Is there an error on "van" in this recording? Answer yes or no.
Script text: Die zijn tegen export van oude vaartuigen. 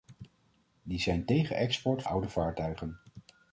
yes